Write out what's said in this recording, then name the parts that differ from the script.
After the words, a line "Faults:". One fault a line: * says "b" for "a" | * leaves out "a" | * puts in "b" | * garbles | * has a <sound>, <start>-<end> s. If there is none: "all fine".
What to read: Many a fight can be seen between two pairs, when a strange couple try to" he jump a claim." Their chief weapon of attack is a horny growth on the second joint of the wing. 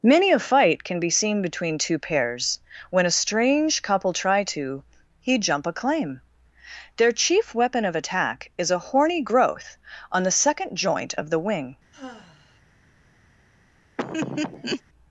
Many a fight can be seen between two pairs, when a strange couple try to" he jump a claim." Their chief weapon of attack is a horny growth on the second joint of the wing.
Faults:
* has a sigh, 11.9-12.6 s
* has a laugh, 14.0-14.8 s